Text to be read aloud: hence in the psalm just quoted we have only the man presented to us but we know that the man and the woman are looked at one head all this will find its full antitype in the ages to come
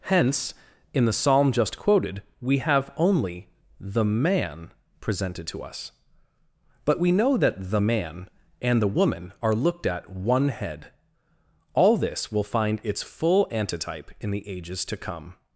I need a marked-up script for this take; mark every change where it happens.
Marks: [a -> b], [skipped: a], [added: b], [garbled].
hence in the psalm just quoted we have only the man presented to us but we know that the man and the woman are looked at one head all this will find its full antitype in the ages to come